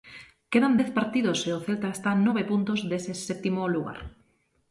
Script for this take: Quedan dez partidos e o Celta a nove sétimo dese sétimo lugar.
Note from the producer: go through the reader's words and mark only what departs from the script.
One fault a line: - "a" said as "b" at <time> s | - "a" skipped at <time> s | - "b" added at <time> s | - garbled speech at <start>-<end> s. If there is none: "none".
- "está" added at 2.0 s
- "sétimo" said as "puntos" at 2.5 s